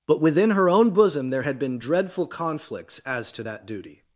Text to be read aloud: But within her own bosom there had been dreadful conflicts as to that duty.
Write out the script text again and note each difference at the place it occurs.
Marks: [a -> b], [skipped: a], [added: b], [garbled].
But within her own bosom there had been dreadful conflicts as to that duty.